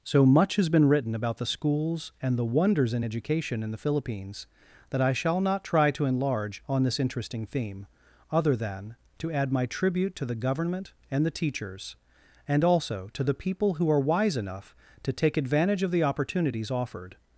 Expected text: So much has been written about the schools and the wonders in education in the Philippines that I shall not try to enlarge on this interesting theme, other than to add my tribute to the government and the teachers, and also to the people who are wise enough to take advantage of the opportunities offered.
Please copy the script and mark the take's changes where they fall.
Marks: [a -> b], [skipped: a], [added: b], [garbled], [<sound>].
So much has been written about the schools and the wonders in education in the Philippines that I shall not try to enlarge on this interesting theme, other than to add my tribute to the government and the teachers, and also to the people who are wise enough to take advantage of the opportunities offered.